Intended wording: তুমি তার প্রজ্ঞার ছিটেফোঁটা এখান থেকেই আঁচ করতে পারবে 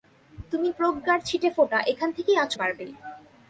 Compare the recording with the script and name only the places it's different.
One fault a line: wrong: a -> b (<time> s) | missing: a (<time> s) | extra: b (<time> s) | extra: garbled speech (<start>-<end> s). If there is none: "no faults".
missing: তার (0.7 s)
missing: করতে (2.5 s)